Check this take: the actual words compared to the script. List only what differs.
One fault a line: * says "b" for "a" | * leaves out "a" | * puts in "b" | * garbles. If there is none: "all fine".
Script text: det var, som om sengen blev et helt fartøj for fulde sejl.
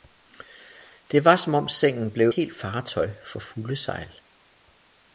* leaves out "et"